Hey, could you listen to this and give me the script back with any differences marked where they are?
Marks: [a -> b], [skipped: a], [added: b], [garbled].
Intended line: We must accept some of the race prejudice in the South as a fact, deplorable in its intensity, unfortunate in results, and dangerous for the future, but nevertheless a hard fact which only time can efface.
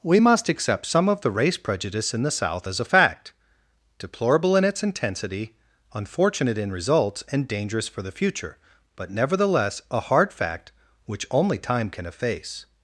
We must accept some of the race prejudice in the South as a fact, deplorable in its intensity, unfortunate in results, and dangerous for the future, but nevertheless a hard fact which only time can efface.